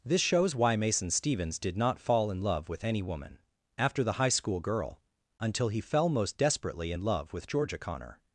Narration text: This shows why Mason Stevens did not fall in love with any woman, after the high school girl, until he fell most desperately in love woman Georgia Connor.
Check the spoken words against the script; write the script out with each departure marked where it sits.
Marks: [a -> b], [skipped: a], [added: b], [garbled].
This shows why Mason Stevens did not fall in love with any woman, after the high school girl, until he fell most desperately in love [woman -> with] Georgia Connor.